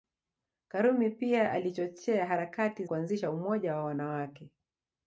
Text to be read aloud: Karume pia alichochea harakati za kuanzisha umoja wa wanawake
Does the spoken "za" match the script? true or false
false